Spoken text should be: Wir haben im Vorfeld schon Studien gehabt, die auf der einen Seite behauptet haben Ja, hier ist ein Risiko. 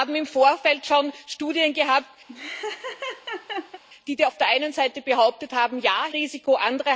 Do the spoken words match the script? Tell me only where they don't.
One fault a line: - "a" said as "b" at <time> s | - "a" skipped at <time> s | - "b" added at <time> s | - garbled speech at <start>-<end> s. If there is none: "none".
- "hier ist ein" skipped at 6.1 s